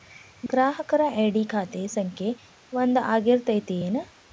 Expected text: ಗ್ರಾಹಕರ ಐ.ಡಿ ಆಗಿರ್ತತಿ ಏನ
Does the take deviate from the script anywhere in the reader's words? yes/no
yes